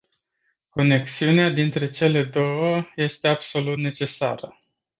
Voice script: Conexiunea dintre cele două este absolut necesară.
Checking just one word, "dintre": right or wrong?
right